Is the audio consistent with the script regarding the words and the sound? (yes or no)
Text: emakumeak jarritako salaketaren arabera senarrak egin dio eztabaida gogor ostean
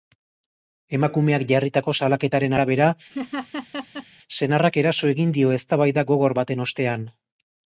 no